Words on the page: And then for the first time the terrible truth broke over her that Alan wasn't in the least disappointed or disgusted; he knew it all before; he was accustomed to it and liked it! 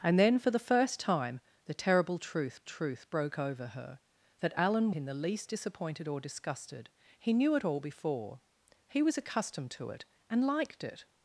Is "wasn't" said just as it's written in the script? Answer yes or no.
no